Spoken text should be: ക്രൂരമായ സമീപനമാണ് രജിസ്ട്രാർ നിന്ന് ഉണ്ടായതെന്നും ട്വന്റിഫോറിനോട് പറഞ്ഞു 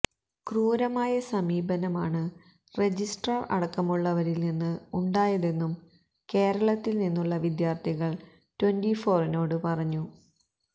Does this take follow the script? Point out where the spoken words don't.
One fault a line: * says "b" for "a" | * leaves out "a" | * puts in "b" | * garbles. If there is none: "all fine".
* puts in "അടക്കമുള്ളവരിൽ"
* puts in "കേരളത്തിൽ നിന്നുള്ള വിദ്യാർത്ഥികൾ"